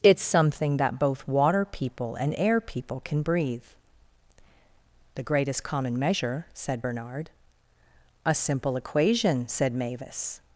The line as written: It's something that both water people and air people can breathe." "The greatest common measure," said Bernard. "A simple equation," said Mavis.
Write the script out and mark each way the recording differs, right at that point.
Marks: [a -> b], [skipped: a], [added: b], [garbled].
It's something that both water people and air people can breathe." "The greatest common measure," said Bernard. "A simple equation," said Mavis.